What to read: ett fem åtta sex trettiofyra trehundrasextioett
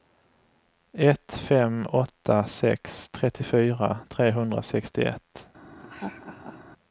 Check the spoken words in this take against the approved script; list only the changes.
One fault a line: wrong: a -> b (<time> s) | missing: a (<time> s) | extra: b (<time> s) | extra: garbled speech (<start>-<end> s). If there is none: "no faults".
no faults